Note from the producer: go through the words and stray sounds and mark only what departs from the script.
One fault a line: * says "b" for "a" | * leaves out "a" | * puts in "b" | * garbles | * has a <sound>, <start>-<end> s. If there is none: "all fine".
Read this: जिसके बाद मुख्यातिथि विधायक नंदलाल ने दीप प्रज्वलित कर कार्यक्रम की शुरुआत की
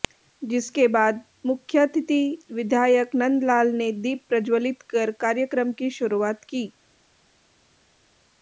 all fine